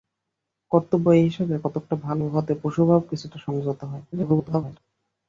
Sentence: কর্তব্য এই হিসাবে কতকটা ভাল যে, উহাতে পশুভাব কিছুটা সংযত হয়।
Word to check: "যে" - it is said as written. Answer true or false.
false